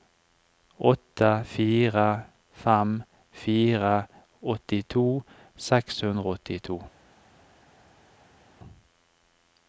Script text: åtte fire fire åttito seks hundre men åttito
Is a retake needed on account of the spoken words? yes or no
yes